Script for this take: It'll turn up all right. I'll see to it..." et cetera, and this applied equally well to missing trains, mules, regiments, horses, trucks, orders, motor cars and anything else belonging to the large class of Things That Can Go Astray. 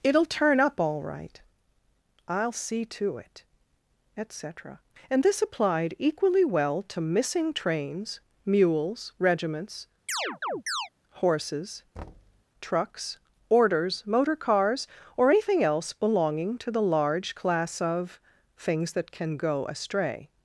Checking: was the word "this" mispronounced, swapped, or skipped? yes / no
no